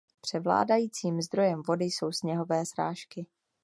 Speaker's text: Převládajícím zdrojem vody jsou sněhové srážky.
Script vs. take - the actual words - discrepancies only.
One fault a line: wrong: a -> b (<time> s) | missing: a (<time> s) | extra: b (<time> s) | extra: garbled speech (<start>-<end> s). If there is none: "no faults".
no faults